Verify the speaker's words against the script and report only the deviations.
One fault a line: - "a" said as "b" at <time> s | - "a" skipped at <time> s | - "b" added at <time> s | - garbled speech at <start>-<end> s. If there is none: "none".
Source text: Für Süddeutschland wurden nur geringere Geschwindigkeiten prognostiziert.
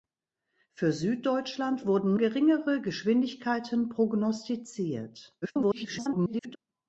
- "nur" skipped at 2.1 s
- garbled speech at 5.4-6.6 s